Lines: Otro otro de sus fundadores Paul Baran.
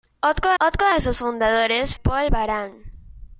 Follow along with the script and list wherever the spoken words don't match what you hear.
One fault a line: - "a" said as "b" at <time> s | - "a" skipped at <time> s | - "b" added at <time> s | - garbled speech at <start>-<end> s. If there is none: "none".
none